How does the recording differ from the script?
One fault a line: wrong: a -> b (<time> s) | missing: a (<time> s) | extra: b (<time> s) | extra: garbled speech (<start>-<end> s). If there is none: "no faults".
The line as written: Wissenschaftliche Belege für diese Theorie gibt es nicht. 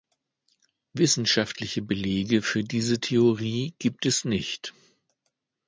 no faults